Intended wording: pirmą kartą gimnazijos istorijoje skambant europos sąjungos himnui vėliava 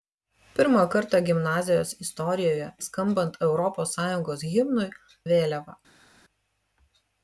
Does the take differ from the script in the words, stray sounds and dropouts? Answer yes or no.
no